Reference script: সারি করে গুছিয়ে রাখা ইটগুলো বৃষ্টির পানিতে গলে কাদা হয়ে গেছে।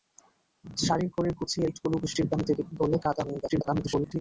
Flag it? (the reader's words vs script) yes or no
yes